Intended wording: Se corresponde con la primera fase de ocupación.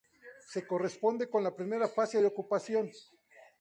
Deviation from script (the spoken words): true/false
false